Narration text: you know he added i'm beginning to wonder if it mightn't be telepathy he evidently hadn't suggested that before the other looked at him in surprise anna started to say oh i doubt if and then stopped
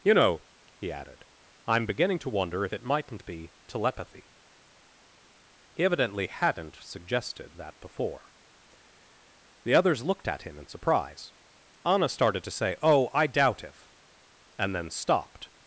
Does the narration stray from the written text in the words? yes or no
yes